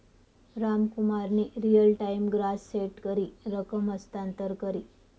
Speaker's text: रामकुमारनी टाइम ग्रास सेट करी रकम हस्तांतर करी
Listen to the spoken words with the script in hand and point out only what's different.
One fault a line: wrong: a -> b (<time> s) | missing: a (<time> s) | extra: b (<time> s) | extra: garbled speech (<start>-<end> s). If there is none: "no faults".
extra: रियल (1.6 s)